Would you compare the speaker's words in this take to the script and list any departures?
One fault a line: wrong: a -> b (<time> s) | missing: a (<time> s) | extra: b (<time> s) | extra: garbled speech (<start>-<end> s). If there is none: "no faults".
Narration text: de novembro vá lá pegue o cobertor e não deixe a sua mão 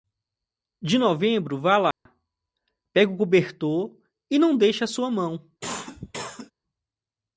no faults